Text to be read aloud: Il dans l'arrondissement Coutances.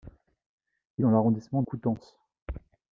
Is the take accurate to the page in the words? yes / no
yes